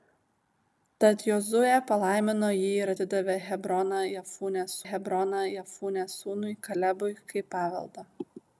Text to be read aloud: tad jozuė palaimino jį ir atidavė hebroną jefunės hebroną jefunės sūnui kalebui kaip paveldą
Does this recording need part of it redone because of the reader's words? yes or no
no